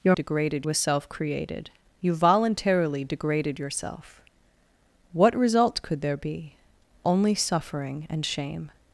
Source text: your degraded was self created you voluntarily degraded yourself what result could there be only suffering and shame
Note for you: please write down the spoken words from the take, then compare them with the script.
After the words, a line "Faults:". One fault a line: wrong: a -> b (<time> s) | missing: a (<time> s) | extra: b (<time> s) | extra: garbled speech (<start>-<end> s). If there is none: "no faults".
your degraded was self created you voluntarily degraded yourself what result could there be only suffering and shame
Faults:
no faults